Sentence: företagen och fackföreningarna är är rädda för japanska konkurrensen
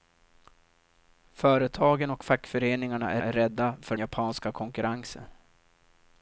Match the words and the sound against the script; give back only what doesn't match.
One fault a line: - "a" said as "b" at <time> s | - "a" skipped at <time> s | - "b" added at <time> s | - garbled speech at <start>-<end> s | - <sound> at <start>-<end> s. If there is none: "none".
none